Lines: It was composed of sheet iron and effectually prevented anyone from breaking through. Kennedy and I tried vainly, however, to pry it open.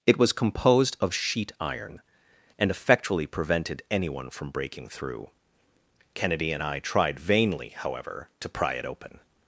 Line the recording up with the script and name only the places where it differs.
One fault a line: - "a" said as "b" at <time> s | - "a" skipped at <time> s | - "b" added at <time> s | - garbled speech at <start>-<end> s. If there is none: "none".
none